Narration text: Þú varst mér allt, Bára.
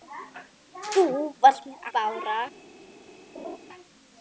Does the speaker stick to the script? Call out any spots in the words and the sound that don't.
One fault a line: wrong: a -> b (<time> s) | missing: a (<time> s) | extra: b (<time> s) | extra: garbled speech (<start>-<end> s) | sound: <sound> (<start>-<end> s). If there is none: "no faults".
missing: allt (1.9 s)
sound: laugh (3.3-3.6 s)